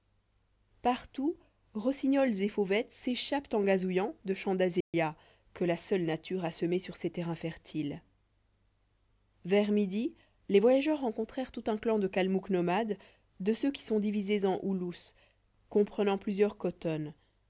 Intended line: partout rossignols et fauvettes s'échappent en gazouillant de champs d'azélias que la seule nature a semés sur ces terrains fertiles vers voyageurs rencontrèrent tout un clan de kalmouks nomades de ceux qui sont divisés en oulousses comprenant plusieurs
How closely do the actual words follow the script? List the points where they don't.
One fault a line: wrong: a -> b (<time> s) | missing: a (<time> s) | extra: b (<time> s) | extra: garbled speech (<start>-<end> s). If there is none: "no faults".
extra: midi les (9.7 s)